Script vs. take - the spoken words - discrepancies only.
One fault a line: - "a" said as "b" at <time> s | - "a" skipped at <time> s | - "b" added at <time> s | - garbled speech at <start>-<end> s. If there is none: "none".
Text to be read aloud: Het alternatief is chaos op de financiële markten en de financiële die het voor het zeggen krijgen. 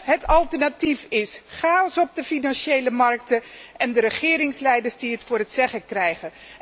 - "financiële" said as "regeringsleiders" at 4.0 s